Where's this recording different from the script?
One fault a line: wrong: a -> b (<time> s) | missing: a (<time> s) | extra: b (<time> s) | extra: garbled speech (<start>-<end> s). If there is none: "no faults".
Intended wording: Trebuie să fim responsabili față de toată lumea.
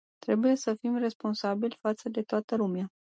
no faults